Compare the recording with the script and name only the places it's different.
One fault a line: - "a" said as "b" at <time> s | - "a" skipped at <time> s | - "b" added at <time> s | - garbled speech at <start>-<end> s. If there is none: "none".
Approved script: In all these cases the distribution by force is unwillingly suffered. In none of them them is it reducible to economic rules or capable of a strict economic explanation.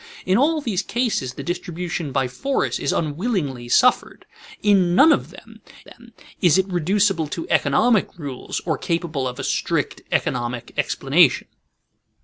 none